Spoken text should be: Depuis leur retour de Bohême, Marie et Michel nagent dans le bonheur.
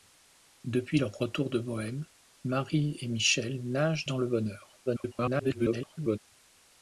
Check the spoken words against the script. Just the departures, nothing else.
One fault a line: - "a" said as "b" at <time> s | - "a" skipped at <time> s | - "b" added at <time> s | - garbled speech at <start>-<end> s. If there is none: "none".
- garbled speech at 4.9-6.2 s